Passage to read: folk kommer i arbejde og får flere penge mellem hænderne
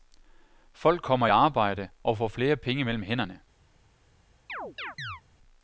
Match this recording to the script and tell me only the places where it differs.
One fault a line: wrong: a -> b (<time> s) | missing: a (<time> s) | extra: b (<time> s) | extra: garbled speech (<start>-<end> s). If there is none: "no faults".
no faults